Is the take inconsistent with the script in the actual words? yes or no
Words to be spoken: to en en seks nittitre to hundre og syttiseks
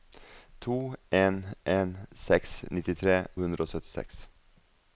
yes